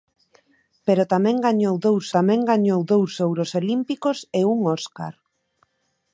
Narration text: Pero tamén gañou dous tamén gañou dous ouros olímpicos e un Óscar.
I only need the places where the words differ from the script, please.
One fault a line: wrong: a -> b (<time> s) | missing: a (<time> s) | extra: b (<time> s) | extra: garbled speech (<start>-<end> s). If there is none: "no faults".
no faults